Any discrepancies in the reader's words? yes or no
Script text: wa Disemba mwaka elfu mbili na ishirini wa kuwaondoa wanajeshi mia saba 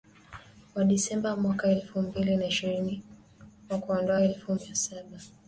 yes